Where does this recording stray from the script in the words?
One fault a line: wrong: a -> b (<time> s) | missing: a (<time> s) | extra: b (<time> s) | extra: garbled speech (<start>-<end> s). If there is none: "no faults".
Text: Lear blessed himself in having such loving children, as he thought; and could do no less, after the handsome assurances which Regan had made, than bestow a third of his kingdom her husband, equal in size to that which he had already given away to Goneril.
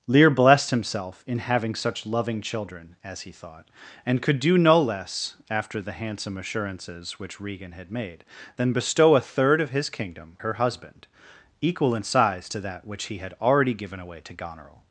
no faults